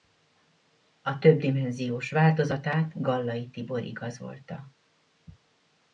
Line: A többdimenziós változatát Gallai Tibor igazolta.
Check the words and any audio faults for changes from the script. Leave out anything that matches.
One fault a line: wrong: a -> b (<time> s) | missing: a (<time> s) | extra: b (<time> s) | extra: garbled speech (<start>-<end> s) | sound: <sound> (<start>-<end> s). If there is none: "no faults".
no faults